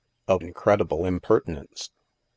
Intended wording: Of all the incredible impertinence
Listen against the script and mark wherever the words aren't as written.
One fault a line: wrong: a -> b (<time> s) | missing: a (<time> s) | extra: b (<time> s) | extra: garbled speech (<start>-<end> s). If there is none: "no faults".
missing: all the (0.4 s)